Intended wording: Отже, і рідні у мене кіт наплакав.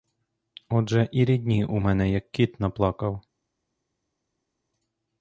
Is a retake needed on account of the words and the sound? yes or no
yes